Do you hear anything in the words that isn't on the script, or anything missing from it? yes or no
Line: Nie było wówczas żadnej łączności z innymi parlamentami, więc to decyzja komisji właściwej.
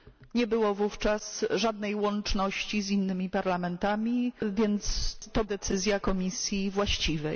no